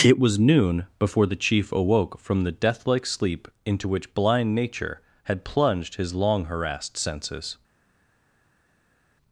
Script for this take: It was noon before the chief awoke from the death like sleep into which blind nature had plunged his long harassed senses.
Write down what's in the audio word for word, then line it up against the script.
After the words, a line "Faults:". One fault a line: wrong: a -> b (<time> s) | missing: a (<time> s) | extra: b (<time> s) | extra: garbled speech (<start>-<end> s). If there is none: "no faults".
It was noon before the chief awoke from the death like sleep into which blind nature had plunged his long harassed senses.
Faults:
no faults